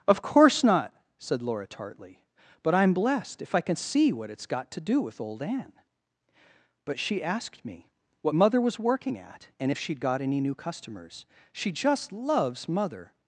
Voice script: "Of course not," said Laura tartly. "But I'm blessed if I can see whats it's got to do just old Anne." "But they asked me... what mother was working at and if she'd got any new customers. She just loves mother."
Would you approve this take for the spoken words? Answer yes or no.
no